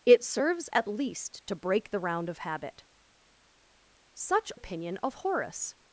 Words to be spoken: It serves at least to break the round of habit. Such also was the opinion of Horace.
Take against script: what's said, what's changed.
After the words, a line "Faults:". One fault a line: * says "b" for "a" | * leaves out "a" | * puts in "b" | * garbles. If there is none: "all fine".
It serves at least to break the round of habit. Such opinion of Horace.
Faults:
* leaves out "also was the"